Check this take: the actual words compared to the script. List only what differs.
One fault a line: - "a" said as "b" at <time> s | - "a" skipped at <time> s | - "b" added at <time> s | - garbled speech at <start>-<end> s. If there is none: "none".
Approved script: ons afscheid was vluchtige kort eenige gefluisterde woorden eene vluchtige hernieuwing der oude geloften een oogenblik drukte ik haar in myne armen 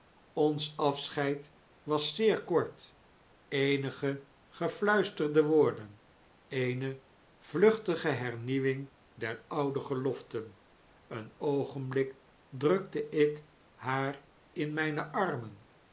- "vluchtige" said as "zeer" at 2.1 s